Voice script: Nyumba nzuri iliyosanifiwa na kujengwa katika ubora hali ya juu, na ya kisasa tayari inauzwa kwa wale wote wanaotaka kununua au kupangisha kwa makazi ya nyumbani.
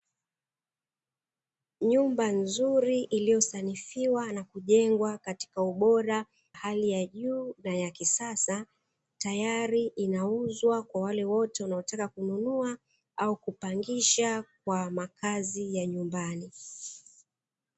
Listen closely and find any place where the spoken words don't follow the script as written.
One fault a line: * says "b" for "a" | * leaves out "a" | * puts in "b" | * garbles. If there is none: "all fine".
all fine